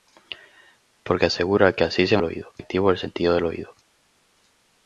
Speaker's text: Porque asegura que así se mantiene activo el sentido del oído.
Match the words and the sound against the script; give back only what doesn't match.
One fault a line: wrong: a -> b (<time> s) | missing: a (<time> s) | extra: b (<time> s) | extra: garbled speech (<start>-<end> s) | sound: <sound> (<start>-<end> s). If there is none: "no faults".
wrong: mantiene -> oído (2.2 s)